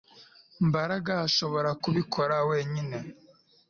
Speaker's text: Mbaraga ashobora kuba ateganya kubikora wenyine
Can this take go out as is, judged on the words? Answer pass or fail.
fail